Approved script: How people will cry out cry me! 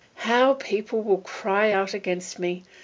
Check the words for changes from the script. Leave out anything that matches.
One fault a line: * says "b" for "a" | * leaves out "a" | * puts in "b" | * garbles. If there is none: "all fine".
* says "against" for "cry"